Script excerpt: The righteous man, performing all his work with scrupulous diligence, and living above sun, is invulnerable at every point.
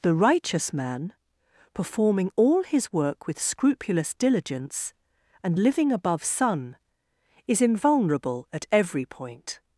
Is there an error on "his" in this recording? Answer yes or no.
no